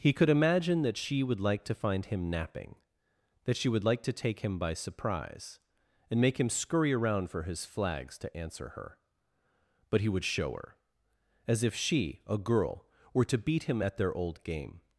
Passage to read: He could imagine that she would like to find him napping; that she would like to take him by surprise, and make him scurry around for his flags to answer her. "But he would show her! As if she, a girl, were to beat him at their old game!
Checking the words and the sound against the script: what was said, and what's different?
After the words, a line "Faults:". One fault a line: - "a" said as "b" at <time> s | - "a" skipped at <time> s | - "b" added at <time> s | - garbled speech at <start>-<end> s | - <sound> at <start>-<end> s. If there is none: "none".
He could imagine that she would like to find him napping; that she would like to take him by surprise, and make him scurry around for his flags to answer her. "But he would show her! As if she, a girl, were to beat him at their old game!
Faults:
none